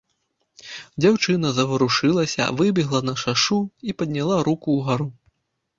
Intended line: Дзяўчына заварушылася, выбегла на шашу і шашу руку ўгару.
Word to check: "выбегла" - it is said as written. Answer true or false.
true